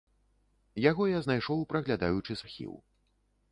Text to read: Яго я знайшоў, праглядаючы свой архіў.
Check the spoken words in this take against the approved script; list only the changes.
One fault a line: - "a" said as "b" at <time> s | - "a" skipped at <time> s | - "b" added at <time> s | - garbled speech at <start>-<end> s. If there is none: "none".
- "свой" skipped at 2.4 s